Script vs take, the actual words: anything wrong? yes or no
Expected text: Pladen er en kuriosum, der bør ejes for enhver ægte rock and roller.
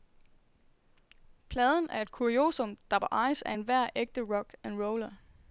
yes